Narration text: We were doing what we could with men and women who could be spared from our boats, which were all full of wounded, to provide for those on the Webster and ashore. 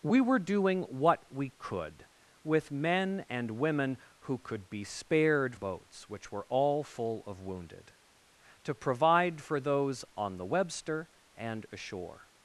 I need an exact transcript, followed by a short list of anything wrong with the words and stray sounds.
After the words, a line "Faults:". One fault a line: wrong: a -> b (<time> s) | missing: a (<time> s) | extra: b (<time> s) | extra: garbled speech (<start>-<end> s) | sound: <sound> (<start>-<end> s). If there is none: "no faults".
We were doing what we could with men and women who could be spared boats, which were all full of wounded, to provide for those on the Webster and ashore.
Faults:
missing: from our (5.5 s)